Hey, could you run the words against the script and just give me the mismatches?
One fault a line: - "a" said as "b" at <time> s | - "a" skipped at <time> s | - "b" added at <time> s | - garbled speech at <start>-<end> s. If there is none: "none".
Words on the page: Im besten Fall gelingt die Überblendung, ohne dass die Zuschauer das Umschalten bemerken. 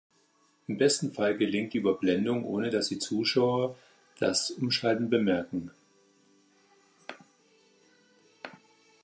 none